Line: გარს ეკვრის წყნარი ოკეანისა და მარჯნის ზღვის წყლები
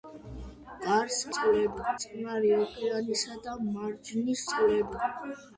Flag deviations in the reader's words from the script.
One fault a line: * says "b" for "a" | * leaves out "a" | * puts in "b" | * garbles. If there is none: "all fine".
* says "წყლები" for "ეკვრის"
* leaves out "ზღვის"